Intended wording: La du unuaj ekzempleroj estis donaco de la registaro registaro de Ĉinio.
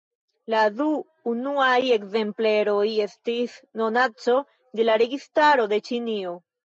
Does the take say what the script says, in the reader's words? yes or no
no